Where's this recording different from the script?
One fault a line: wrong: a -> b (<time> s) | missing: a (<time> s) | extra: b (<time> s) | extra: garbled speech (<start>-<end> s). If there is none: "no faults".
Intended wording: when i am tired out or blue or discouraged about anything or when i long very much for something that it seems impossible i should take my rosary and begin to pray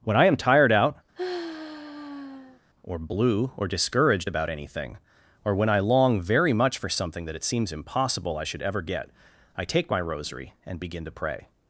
extra: ever get i (8.6 s)